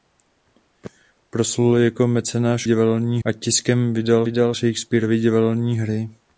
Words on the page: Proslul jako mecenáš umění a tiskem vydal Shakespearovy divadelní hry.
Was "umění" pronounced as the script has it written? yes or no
no